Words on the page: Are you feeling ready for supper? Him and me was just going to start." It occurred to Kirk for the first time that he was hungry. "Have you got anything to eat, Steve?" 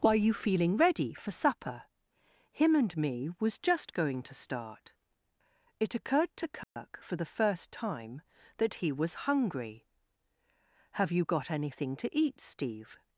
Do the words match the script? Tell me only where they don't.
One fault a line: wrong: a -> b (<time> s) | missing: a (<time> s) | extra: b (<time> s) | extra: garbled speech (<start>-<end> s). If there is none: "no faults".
no faults